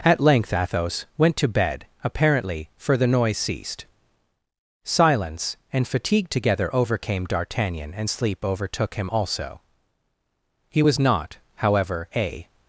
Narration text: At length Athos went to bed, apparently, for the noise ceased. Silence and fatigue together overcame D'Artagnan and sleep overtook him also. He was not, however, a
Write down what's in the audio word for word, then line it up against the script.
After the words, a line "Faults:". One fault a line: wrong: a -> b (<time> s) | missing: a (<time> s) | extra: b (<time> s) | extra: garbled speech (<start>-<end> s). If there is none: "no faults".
At length Athos went to bed, apparently, for the noise ceased. Silence and fatigue together overcame D'Artagnan and sleep overtook him also. He was not, however, a
Faults:
no faults